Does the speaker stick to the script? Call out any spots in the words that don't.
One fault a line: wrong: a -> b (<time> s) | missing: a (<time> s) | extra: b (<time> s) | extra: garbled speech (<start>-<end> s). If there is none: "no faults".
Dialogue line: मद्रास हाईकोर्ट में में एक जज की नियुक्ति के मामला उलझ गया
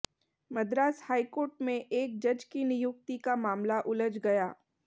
missing: में (1.7 s)
wrong: के -> का (3.2 s)